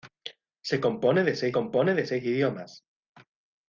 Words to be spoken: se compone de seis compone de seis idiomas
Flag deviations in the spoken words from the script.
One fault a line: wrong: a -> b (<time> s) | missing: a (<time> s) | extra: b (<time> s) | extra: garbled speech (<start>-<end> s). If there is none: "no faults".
no faults